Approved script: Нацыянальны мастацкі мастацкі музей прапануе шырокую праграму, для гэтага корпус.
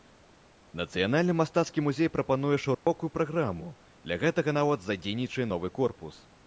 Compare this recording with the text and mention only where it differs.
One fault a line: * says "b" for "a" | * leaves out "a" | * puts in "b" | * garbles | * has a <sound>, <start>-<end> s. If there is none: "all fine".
* leaves out "мастацкі"
* has a dropout, 2.7-2.9 s
* puts in "нават задзейнічае новы"